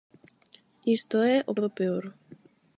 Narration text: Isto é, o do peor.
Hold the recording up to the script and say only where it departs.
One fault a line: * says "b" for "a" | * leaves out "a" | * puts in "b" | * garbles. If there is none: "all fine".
all fine